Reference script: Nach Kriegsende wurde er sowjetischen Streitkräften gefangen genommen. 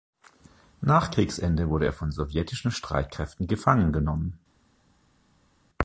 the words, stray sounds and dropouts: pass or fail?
fail